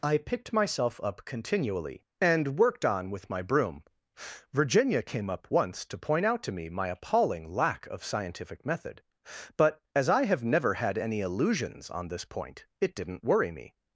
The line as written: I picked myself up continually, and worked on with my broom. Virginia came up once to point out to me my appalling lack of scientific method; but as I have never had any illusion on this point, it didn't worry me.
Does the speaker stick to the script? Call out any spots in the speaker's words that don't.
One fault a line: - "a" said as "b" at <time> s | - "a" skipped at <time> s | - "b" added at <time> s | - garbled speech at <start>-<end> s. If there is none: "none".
- "illusion" said as "illusions" at 11.2 s